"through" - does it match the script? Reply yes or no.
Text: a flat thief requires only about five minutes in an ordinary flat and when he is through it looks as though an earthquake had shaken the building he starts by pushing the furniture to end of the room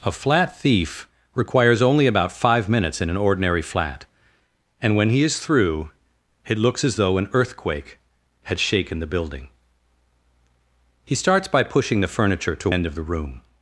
yes